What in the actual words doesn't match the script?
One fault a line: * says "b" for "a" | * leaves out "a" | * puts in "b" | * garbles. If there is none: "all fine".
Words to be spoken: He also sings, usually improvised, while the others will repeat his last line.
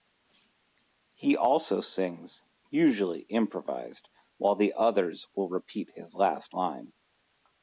all fine